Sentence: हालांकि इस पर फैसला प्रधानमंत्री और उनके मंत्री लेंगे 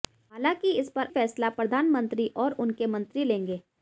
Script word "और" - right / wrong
right